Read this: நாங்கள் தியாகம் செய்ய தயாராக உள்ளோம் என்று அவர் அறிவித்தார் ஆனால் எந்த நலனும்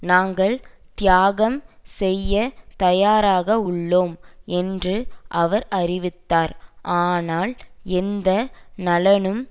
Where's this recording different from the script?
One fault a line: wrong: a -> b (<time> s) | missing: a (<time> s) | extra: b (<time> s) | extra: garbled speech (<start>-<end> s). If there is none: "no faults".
no faults